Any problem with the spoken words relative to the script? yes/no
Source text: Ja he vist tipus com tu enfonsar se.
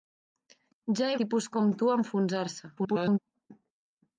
yes